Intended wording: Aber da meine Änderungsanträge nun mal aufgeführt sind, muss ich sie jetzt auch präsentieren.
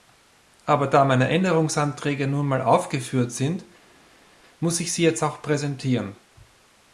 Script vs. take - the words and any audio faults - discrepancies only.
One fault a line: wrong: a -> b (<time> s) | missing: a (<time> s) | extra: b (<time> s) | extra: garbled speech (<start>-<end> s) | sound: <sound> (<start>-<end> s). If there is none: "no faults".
no faults